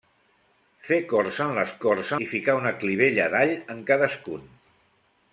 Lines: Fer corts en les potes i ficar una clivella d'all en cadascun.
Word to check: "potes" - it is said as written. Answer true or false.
false